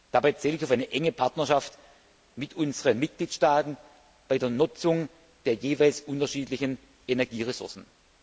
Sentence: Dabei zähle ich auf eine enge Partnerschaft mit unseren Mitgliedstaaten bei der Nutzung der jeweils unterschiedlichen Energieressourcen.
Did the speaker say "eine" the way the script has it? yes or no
yes